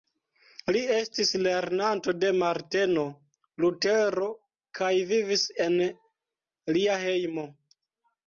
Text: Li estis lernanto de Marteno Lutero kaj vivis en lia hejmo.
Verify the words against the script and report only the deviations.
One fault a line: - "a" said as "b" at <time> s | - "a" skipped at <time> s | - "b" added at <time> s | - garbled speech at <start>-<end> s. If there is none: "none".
none